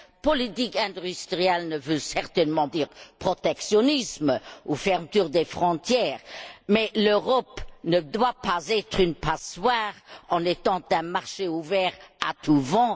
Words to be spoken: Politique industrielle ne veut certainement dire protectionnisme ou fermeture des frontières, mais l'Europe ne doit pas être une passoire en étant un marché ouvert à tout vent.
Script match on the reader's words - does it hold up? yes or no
yes